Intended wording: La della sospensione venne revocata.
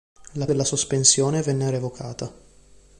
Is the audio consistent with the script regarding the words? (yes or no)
yes